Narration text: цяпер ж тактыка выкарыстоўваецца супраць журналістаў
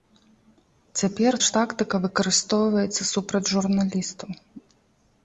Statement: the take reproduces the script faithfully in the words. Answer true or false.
true